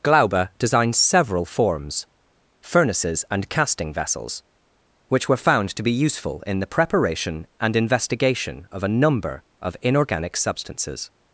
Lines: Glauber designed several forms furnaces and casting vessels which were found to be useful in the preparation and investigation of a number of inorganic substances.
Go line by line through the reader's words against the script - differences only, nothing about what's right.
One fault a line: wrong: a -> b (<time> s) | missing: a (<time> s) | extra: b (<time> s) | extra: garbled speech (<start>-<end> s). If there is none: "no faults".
no faults